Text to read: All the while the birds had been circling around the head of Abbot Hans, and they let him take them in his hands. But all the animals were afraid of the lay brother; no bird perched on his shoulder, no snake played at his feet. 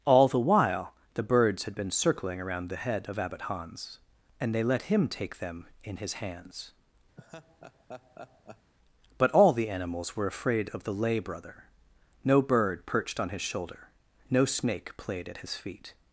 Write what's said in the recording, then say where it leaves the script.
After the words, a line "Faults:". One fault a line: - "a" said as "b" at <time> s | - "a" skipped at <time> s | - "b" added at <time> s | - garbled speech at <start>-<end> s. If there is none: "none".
All the while the birds had been circling around the head of Abbot Hans, and they let him take them in his hands. But all the animals were afraid of the lay brother; no bird perched on his shoulder, no snake played at his feet.
Faults:
none